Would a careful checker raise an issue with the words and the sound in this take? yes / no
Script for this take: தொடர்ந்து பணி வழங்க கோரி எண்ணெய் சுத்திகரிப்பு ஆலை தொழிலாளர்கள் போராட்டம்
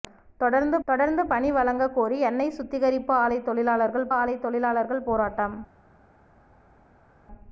yes